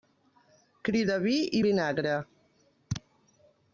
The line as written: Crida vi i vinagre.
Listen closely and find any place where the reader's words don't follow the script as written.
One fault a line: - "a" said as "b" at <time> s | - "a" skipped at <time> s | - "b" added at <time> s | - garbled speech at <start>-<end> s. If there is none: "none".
none